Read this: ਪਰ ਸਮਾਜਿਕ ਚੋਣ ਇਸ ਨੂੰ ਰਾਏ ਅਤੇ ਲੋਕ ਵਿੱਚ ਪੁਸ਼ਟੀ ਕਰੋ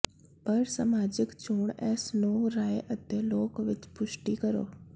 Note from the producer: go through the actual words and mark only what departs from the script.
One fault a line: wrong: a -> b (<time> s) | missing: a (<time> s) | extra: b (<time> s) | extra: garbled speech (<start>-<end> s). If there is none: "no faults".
no faults